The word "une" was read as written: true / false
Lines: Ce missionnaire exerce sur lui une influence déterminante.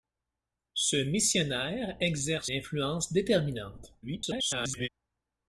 false